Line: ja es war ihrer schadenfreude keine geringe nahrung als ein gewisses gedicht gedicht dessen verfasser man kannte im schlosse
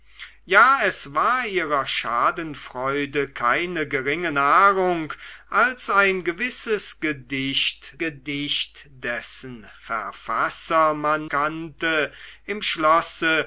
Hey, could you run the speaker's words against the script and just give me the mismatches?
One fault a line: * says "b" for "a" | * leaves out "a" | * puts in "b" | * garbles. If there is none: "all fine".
all fine